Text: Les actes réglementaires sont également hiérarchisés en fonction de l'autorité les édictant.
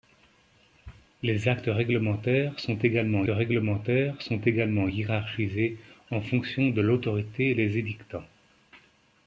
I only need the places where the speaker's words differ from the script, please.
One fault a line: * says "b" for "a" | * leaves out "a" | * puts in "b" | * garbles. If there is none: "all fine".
* puts in "réglementaires sont également"